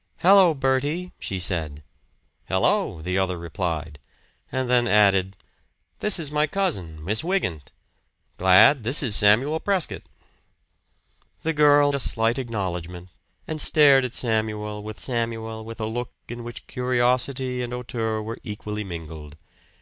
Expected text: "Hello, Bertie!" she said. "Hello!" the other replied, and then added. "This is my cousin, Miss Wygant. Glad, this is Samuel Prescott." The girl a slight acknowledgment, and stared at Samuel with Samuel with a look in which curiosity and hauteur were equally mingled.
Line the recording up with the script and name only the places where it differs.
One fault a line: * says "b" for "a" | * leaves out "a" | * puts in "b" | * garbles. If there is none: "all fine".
all fine